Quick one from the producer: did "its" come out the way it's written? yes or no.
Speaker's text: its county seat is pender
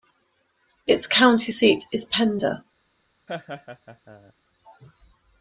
yes